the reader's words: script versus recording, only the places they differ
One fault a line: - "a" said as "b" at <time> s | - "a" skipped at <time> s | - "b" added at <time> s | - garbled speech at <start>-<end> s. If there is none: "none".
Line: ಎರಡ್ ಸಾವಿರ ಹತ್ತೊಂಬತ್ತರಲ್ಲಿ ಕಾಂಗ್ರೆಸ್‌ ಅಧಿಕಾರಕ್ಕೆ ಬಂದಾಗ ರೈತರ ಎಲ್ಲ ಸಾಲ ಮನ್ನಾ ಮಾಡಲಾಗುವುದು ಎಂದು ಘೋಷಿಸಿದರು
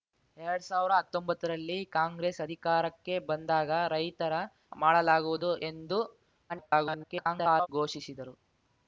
- "ಎಲ್ಲ ಸಾಲ ಮನ್ನಾ" skipped at 4.3 s
- garbled speech at 6.5-7.7 s